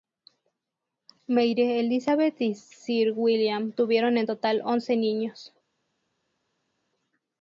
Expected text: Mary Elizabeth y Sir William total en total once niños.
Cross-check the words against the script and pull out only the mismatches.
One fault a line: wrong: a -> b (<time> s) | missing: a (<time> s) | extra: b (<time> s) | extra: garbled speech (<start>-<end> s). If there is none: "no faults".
wrong: total -> tuvieron (3.7 s)